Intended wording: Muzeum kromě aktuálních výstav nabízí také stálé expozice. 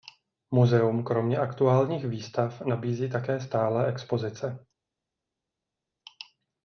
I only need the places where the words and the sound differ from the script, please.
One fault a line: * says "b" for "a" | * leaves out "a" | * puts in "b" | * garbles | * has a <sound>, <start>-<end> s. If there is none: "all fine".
all fine